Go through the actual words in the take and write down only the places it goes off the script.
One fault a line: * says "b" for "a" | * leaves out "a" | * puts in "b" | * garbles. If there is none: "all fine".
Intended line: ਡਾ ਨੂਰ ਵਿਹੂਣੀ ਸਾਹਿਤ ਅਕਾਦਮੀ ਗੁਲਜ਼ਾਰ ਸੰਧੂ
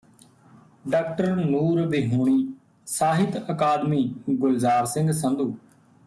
* puts in "ਸਿੰਘ"